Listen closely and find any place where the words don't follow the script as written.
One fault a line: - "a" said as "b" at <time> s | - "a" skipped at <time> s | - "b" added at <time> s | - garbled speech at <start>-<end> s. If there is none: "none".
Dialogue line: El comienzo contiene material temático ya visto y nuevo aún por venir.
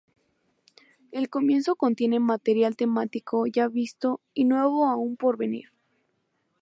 none